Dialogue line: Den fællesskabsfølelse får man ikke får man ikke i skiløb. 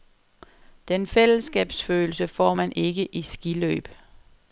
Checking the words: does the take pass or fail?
fail